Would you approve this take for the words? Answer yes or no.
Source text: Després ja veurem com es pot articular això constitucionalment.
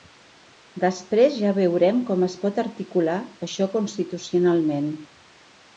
yes